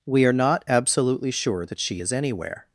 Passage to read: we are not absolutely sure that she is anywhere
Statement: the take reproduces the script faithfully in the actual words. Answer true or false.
true